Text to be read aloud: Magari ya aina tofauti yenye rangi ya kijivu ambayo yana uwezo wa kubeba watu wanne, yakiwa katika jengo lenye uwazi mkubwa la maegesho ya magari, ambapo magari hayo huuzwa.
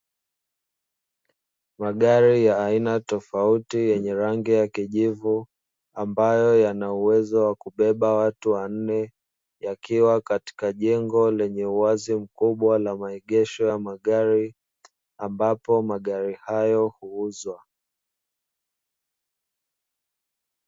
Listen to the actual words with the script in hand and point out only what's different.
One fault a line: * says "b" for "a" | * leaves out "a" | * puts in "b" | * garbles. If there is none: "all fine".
all fine